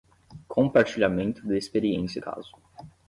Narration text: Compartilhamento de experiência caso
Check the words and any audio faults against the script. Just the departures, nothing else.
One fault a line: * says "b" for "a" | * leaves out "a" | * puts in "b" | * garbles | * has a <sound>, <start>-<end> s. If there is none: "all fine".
all fine